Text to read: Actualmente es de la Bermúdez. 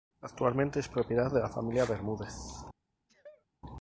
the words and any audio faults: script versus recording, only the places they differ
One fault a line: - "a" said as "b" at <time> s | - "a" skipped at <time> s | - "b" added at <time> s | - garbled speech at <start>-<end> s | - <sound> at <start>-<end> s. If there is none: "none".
- "propiedad" added at 0.9 s
- "Familia" added at 1.5 s
- sneeze at 3.1-3.5 s